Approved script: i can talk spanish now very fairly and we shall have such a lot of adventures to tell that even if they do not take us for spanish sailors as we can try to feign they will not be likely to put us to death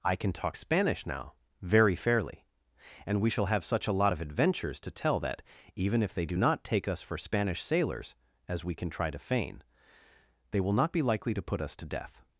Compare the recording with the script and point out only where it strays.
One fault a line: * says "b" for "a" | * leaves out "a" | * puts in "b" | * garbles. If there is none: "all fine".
all fine